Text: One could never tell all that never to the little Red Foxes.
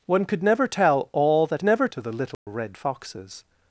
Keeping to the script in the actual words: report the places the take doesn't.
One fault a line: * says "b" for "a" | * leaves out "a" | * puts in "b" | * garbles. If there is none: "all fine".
all fine